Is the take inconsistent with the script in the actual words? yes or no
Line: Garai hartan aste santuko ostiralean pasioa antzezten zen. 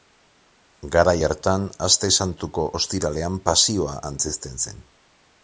no